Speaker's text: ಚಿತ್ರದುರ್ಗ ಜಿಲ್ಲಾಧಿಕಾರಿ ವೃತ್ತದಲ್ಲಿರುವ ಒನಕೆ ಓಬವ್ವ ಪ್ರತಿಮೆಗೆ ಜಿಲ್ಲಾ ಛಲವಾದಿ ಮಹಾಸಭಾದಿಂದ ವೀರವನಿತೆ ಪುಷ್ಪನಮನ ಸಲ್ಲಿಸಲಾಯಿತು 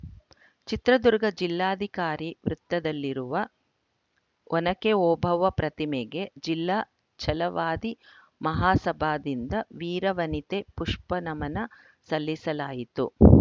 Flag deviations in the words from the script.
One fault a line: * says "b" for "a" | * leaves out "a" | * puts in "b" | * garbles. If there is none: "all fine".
all fine